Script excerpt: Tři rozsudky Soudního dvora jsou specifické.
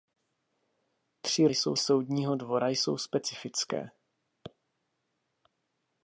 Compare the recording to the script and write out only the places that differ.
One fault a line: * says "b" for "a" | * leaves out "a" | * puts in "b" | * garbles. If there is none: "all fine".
* says "jsou" for "rozsudky"